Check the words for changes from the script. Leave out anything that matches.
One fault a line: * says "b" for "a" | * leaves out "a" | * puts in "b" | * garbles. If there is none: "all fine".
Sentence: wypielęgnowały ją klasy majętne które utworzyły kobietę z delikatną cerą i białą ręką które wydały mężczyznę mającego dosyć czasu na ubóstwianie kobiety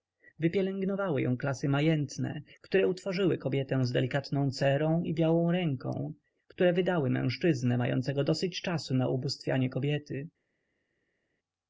all fine